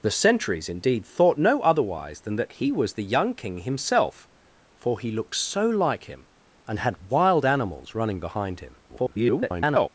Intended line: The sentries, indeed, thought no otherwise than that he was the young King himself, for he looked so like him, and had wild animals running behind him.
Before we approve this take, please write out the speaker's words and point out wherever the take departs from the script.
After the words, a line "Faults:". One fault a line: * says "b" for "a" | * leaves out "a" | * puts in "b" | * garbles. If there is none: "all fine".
The sentries, indeed, thought no otherwise than that he was the young King himself, for he looked so like him, and had wild animals running behind him. [garbled]
Faults:
* garbles